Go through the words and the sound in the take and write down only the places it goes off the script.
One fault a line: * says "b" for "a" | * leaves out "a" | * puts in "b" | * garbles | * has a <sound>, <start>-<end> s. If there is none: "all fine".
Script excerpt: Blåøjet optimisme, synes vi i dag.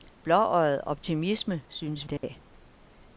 * leaves out "vi"
* has a dropout, 2.2-2.2 s